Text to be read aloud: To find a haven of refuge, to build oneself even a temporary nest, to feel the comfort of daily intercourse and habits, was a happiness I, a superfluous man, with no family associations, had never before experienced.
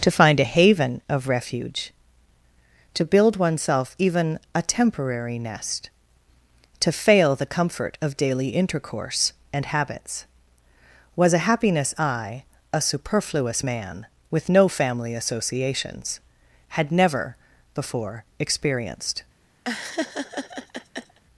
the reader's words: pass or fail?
fail